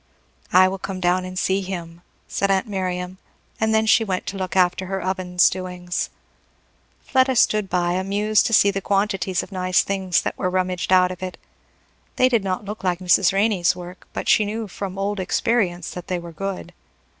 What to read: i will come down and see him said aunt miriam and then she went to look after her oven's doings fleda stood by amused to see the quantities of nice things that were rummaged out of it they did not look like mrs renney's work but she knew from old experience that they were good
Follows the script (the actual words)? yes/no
yes